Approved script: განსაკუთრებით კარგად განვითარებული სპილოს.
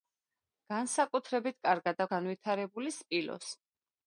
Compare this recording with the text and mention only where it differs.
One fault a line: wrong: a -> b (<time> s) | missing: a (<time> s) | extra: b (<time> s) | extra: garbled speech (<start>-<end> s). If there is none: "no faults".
no faults